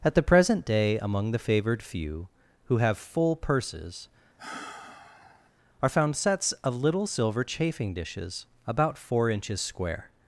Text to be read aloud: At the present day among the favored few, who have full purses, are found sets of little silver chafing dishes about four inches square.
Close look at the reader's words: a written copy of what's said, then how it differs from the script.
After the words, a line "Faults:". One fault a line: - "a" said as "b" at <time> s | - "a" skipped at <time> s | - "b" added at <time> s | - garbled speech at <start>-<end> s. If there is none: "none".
At the present day among the favored few, who have full purses, are found sets of little silver chafing dishes about four inches square.
Faults:
none